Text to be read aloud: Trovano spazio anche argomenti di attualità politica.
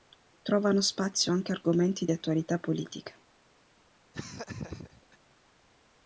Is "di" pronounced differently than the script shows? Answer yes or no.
yes